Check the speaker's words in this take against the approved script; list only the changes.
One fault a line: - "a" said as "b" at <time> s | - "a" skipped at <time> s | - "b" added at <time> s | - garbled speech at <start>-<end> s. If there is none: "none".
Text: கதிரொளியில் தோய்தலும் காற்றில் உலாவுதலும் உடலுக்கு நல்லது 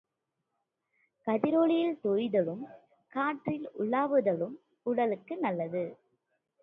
none